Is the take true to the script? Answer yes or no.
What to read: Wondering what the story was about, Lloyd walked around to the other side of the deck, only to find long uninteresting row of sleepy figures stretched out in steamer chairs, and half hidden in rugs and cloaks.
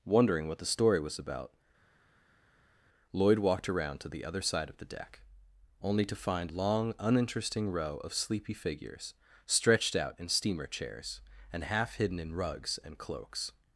yes